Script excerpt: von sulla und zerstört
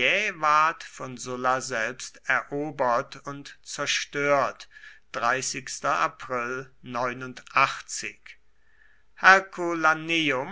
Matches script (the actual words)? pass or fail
fail